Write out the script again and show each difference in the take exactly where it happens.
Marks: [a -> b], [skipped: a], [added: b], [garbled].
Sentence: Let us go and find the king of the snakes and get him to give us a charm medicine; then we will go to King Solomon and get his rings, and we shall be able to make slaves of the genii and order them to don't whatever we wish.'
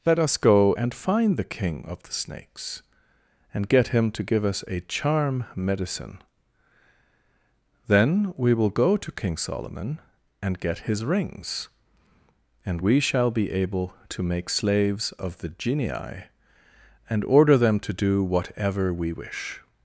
Let us go and find the king of the snakes and get him to give us a charm medicine; then we will go to King Solomon and get his rings, and we shall be able to make slaves of the genii and order them to [don't -> do] whatever we wish.'